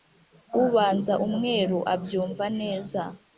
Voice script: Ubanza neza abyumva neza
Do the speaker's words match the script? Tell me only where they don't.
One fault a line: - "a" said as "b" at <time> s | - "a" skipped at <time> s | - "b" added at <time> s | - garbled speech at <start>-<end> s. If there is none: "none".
- "neza" said as "umweru" at 1.3 s